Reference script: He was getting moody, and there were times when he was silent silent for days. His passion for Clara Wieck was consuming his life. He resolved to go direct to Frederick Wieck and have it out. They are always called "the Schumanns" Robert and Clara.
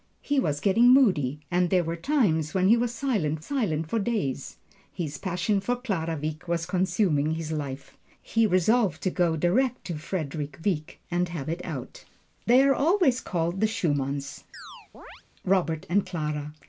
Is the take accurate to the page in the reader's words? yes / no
yes